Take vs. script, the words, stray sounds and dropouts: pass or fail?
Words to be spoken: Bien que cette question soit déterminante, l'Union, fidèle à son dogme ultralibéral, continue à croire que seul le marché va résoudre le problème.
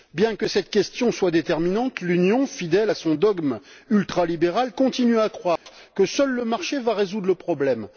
fail